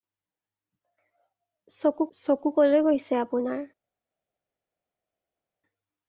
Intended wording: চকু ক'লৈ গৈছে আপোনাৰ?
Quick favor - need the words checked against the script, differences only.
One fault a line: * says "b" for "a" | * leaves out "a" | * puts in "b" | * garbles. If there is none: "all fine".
* puts in "চকু"